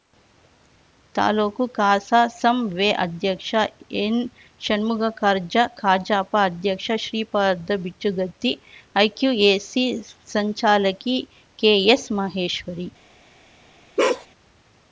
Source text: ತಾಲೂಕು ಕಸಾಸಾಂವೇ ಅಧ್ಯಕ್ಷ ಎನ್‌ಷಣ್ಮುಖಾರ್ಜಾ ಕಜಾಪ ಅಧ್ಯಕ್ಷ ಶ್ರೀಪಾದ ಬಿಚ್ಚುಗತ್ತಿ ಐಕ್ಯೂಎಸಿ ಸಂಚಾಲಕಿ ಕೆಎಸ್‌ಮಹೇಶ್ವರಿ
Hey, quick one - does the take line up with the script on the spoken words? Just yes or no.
yes